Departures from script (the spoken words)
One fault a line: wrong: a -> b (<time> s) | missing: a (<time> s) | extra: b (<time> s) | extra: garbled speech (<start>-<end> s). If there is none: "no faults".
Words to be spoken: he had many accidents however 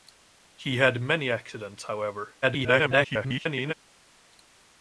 extra: garbled speech (2.4-3.7 s)